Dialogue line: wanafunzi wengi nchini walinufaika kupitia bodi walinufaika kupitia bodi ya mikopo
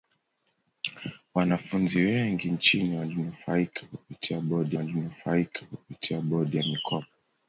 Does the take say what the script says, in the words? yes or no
yes